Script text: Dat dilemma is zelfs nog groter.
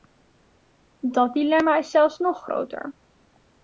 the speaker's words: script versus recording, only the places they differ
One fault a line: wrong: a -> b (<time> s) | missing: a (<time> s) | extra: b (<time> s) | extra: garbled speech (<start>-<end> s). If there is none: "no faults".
no faults